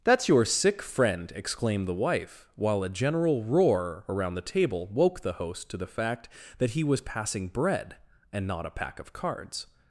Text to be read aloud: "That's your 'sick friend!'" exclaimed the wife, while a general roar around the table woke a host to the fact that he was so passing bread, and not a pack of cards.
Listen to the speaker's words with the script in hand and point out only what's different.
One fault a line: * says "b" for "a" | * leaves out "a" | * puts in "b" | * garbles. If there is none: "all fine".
* says "the" for "a"
* leaves out "so"